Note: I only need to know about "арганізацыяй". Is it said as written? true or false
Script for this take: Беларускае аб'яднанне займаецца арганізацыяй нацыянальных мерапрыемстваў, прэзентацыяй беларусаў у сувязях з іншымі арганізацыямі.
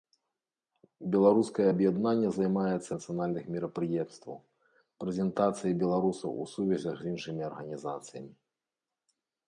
false